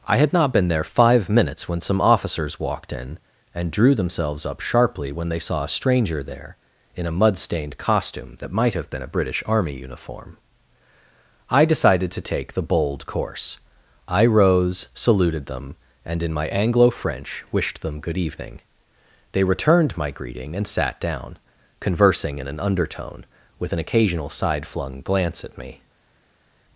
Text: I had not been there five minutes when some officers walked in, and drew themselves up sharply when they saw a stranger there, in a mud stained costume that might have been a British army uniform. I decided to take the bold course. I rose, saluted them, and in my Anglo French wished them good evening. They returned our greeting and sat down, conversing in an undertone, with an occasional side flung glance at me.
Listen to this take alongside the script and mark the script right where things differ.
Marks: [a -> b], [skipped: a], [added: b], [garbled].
I had not been there five minutes when some officers walked in, and drew themselves up sharply when they saw a stranger there, in a mud stained costume that might have been a British army uniform. I decided to take the bold course. I rose, saluted them, and in my Anglo French wished them good evening. They returned [our -> my] greeting and sat down, conversing in an undertone, with an occasional side flung glance at me.